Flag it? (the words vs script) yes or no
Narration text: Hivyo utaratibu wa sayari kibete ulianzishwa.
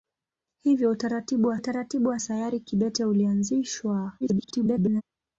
yes